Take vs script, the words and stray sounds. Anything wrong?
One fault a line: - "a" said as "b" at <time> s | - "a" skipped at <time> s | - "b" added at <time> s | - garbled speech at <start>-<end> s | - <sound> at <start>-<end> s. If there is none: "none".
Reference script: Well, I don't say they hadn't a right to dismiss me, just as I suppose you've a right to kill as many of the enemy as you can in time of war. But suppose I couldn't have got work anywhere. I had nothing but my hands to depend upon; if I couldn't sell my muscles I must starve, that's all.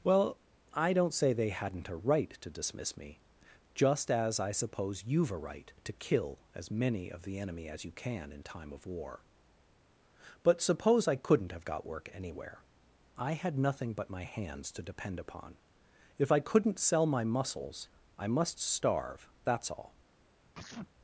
- sneeze at 20.5-20.9 s